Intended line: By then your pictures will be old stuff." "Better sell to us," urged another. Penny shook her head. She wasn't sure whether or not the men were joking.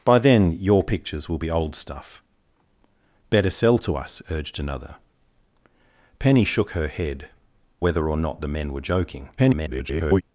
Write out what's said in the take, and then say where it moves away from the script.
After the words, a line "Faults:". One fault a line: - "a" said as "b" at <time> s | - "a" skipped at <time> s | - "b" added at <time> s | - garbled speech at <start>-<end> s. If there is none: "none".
By then your pictures will be old stuff." "Better sell to us," urged another. Penny shook her head. Whether or not the men were joking. [garbled]
Faults:
- "She wasn't sure" skipped at 7.3 s
- garbled speech at 9.4-10.2 s